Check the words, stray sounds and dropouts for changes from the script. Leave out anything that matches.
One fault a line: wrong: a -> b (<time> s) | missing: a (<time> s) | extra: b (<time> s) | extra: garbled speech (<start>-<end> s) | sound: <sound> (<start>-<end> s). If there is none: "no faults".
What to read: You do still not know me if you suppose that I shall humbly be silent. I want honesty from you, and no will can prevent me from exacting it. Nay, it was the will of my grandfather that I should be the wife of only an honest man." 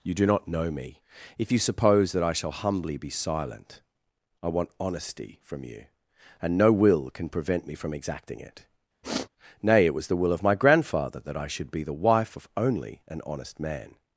missing: still (0.2 s)
sound: sniff (9.0-9.3 s)